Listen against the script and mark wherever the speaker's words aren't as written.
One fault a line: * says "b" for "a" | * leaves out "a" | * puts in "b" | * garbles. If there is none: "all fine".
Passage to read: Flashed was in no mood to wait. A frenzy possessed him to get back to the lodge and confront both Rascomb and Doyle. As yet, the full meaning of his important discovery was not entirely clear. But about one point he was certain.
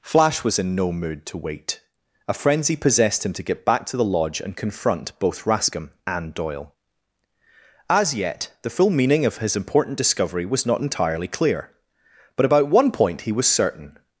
* says "Flash" for "Flashed"